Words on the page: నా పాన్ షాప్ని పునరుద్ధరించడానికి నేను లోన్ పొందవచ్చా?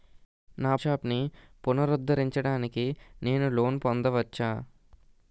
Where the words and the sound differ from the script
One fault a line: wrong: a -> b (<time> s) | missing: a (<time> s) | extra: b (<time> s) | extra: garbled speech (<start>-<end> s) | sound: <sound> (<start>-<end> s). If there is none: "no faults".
missing: పాన్ (0.8 s)